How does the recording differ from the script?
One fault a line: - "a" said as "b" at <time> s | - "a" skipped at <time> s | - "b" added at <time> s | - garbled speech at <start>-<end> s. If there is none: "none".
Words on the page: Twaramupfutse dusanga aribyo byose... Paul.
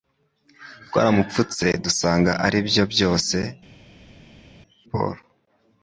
none